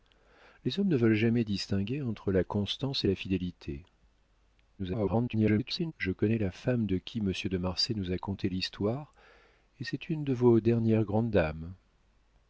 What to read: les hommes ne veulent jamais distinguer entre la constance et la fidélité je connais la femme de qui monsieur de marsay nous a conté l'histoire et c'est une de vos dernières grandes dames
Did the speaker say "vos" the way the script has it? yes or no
yes